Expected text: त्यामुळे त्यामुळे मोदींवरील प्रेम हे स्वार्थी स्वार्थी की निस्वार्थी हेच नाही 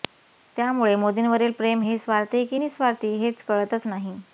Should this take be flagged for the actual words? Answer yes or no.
yes